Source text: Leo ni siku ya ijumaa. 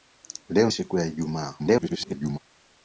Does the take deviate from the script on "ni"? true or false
true